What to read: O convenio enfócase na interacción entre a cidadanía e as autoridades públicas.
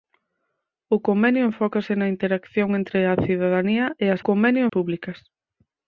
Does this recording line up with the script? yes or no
no